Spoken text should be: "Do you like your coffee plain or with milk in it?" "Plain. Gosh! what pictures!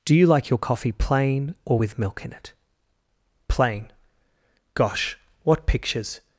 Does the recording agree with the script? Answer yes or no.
yes